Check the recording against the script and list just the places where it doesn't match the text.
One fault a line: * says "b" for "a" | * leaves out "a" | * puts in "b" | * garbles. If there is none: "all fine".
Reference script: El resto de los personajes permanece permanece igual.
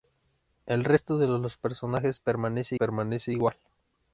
all fine